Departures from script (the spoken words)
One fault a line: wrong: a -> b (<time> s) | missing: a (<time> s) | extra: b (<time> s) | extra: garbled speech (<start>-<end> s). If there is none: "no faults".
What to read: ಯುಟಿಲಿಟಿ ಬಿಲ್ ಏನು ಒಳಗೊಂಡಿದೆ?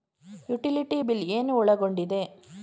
no faults